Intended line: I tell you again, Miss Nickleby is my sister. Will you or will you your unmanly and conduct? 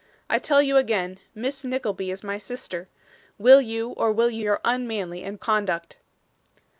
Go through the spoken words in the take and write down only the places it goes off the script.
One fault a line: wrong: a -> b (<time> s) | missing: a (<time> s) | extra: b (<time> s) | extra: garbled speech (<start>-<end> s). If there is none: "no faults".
no faults